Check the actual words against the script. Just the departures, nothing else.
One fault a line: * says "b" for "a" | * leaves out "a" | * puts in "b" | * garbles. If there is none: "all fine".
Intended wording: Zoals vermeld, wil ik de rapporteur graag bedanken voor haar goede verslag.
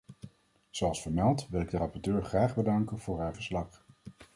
* leaves out "goede"